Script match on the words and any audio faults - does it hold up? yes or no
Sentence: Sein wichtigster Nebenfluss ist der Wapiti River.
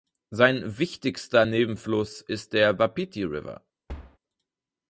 no